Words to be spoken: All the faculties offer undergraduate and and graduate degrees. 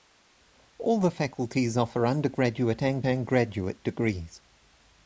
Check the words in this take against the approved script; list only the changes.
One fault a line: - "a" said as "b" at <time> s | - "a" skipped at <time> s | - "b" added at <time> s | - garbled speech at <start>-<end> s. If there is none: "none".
none